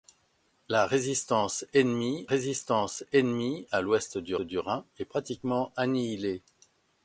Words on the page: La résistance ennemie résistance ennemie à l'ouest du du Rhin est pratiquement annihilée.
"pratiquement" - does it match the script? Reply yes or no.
yes